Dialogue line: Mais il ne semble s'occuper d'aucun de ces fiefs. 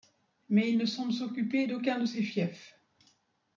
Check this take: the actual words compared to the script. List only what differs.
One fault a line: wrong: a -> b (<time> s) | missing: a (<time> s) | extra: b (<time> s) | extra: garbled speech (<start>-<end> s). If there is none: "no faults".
no faults